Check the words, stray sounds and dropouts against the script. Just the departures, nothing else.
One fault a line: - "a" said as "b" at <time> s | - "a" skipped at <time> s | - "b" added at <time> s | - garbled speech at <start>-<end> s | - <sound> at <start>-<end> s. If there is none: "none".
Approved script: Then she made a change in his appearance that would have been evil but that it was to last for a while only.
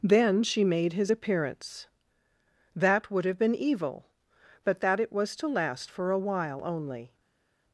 - "a change in" skipped at 0.9 s